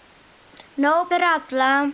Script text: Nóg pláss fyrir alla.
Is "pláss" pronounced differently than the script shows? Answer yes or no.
yes